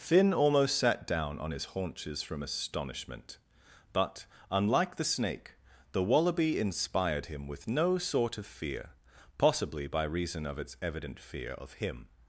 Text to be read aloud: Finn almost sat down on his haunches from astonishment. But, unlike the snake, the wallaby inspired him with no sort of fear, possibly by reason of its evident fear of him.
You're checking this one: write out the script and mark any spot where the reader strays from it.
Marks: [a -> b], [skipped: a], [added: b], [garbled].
Finn almost sat down on his haunches from astonishment. But, unlike the snake, the wallaby inspired him with no sort of fear, possibly by reason of its evident fear of him.